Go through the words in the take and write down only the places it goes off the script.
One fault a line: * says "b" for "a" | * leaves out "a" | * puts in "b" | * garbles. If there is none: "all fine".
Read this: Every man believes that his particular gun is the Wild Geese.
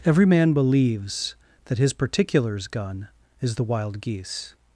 * says "particulars" for "particular"